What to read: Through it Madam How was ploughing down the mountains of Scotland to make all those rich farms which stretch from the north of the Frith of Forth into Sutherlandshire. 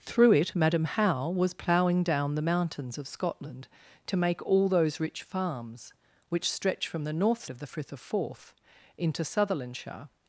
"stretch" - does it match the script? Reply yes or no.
yes